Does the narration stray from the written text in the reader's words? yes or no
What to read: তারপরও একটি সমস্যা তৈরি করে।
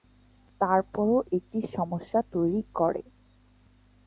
no